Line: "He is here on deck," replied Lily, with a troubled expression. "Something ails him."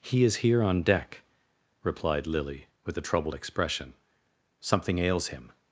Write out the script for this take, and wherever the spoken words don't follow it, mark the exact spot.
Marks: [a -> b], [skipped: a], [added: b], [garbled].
"He is here on deck," replied Lily, with a troubled expression. "Something ails him."